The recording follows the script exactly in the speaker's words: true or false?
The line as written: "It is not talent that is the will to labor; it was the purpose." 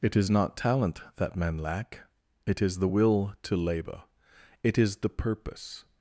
false